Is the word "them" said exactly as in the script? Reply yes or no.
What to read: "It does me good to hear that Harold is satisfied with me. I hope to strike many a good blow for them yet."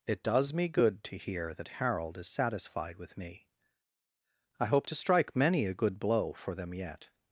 yes